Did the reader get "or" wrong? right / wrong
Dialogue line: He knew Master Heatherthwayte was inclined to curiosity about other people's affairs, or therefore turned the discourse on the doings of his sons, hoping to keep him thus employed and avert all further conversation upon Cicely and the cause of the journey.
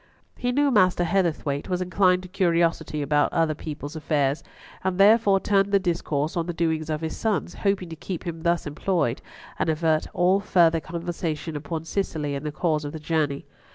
wrong